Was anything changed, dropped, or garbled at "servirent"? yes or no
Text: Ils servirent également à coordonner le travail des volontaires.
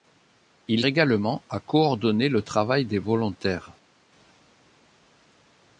yes